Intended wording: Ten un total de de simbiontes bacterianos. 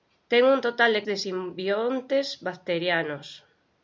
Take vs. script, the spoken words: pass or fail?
pass